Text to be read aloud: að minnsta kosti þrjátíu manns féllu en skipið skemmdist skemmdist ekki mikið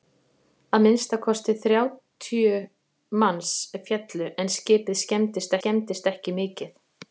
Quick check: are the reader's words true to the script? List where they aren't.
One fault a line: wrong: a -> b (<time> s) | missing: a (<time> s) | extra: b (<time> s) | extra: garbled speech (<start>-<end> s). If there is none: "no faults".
no faults